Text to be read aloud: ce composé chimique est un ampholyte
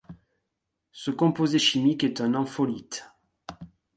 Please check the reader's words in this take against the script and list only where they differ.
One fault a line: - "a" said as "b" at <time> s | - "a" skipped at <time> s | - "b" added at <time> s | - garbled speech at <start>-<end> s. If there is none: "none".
none